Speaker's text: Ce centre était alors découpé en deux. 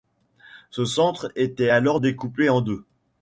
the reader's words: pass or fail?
pass